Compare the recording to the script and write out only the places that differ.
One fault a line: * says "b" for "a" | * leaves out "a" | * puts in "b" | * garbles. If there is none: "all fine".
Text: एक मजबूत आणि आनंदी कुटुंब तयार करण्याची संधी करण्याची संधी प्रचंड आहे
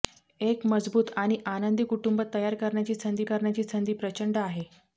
all fine